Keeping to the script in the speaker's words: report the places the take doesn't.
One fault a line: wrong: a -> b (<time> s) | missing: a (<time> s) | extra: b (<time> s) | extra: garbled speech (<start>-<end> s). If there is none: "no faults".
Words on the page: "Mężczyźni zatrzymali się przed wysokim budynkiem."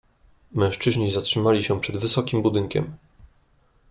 no faults